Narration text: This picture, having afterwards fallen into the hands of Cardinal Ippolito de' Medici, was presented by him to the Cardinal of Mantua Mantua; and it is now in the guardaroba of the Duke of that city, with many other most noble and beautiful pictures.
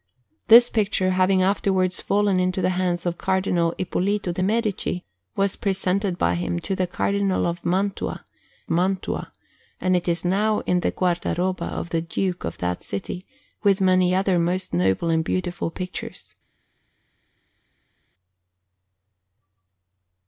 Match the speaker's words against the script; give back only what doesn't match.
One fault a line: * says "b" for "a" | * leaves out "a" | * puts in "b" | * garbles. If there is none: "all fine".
all fine